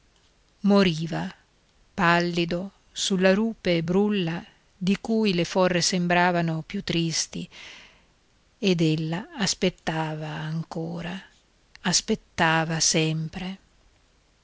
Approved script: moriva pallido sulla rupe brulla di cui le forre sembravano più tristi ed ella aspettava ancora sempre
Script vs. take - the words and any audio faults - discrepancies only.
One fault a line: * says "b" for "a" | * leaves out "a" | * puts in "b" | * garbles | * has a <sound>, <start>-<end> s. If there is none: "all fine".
* puts in "aspettava"